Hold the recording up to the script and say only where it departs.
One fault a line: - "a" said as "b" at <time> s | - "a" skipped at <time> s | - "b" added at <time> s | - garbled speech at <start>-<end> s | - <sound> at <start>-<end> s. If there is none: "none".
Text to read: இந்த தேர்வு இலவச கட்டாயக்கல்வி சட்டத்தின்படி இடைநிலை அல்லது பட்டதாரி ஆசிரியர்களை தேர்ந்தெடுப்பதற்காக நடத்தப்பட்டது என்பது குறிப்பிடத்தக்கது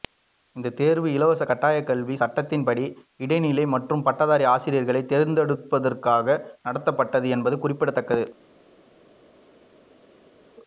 - "அல்லது" said as "மற்றும்" at 3.7 s